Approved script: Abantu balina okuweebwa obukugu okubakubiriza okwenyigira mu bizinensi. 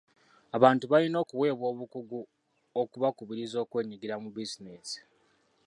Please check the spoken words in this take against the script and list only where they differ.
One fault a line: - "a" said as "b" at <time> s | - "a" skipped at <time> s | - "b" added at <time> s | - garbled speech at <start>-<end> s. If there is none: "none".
none